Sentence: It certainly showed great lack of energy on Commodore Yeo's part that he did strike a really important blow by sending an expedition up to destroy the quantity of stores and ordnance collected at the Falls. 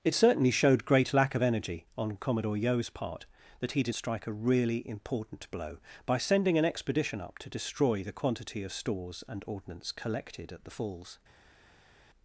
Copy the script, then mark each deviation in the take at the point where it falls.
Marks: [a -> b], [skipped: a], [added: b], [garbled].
It certainly showed great lack of energy on Commodore Yeo's part that he did strike a really important blow by sending an expedition up to destroy the quantity of stores and ordnance collected at the Falls.